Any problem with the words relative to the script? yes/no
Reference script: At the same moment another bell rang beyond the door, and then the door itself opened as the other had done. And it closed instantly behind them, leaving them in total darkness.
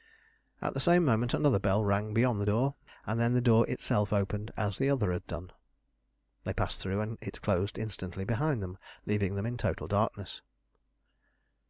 yes